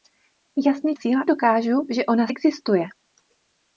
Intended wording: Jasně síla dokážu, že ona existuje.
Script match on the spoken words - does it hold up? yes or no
yes